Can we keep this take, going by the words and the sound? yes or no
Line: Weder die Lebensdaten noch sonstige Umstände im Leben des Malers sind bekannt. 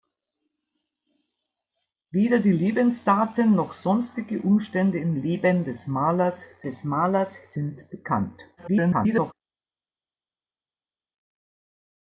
no